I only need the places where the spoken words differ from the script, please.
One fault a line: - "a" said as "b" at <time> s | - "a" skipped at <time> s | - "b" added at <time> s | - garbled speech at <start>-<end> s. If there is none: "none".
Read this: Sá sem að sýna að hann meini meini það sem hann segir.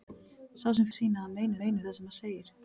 none